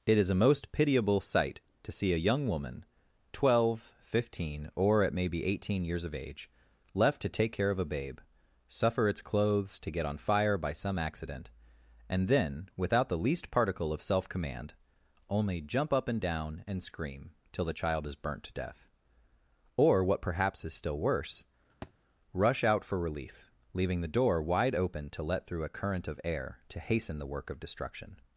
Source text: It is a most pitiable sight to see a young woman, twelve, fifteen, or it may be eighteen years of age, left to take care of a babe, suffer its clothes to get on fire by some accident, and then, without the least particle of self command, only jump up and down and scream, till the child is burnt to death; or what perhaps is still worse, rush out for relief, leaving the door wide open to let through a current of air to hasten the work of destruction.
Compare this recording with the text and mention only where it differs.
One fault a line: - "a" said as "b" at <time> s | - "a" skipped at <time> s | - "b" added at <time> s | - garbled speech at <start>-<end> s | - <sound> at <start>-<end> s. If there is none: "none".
- thud at 21.8-21.9 s